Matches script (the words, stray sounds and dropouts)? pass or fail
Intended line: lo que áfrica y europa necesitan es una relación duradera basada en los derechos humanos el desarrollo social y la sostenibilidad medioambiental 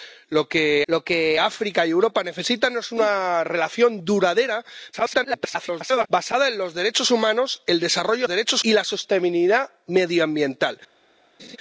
fail